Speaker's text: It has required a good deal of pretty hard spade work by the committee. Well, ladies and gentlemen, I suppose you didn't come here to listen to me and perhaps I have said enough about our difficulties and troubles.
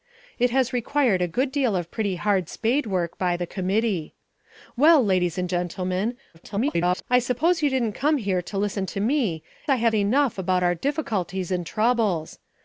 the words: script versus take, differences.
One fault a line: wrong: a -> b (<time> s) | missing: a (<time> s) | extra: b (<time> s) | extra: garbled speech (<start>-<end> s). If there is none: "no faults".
extra: garbled speech (6.3-7.0 s)
missing: and perhaps (9.4 s)
missing: said (10.0 s)